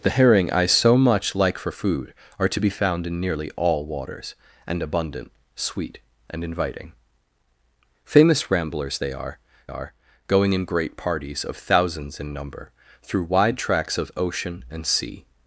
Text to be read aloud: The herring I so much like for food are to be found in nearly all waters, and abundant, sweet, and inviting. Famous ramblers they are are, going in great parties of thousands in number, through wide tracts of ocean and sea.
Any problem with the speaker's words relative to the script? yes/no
no